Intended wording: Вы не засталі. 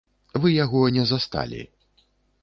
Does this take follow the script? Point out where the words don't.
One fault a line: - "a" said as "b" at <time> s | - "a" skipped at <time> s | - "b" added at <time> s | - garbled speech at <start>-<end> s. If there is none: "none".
- "яго" added at 0.5 s